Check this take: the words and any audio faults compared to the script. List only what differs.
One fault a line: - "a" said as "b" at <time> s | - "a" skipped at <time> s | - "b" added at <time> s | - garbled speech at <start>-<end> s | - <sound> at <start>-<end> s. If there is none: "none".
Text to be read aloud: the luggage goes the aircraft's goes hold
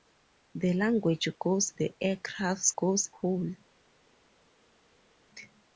none